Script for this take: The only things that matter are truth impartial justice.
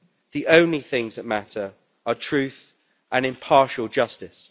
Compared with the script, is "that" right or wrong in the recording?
right